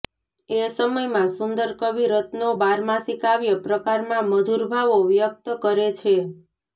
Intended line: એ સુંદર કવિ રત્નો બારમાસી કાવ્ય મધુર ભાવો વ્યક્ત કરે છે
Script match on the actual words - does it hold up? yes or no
no